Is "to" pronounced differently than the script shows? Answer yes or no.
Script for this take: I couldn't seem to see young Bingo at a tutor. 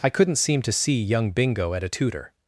no